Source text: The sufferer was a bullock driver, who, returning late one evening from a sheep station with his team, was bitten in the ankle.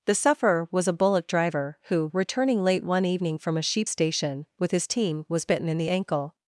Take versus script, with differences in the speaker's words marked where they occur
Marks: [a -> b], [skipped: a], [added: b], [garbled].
The sufferer was a bullock driver, who, returning late one evening from a sheep station with his team, was bitten in the ankle.